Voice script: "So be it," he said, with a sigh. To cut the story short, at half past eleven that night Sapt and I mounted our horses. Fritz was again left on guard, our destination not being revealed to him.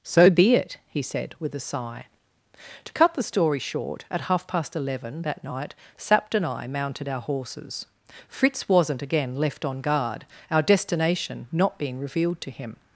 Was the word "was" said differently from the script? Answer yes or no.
yes